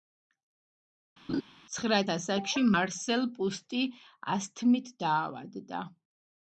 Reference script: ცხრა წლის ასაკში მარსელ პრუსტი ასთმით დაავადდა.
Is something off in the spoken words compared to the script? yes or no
yes